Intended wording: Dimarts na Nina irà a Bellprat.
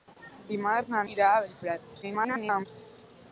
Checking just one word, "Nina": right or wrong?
wrong